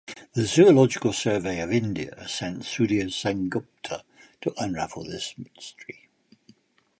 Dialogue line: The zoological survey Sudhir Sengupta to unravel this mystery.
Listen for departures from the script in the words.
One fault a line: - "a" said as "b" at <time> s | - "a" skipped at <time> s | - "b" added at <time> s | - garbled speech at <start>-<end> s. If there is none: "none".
- "of India sent" added at 1.6 s